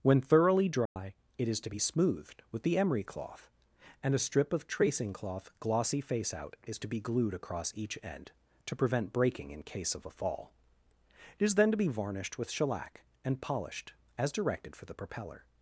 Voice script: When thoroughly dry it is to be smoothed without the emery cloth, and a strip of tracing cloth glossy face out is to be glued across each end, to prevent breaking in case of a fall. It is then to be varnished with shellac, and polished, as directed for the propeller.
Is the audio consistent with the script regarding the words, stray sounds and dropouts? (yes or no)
no